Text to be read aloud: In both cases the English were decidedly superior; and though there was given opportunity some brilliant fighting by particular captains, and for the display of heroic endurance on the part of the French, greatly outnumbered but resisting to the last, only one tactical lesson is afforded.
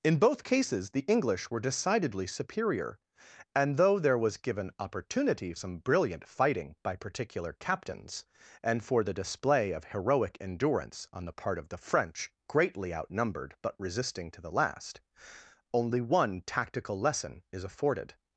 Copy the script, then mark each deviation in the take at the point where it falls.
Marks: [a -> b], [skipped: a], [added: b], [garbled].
In both cases the English were decidedly superior; and though there was given opportunity some brilliant fighting by particular captains, and for the display of heroic endurance on the part of the French, greatly outnumbered but resisting to the last, only one tactical lesson is afforded.